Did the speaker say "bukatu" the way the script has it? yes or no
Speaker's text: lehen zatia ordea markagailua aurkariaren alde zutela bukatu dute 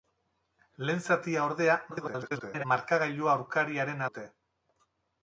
no